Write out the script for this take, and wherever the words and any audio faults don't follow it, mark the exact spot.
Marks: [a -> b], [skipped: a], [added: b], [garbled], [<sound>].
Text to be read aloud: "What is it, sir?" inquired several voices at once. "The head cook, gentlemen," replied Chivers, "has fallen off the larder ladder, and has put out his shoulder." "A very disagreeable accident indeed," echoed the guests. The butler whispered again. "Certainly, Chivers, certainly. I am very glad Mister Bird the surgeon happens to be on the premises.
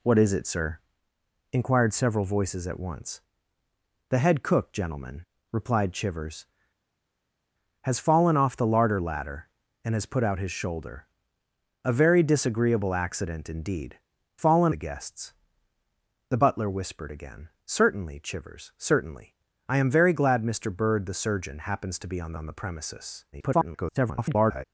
"What is it, sir?" inquired several voices at once. "The head cook, gentlemen," replied Chivers, "has fallen off the larder ladder, and has put out his shoulder." "A very disagreeable accident indeed," [echoed -> fallen] the guests. The butler whispered again. "Certainly, Chivers, certainly. I am very glad Mister Bird the surgeon happens to be on [added: on] the premises. [garbled]